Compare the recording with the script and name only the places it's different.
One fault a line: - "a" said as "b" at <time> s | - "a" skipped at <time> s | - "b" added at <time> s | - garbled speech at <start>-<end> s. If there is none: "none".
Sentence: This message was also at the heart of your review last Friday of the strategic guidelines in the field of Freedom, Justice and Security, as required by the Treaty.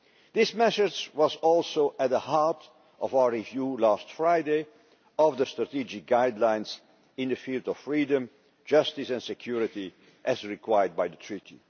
- "your" said as "our" at 3.1 s